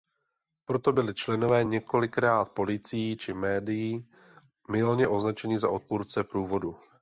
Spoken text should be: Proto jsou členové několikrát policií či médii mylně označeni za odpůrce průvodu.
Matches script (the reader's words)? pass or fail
fail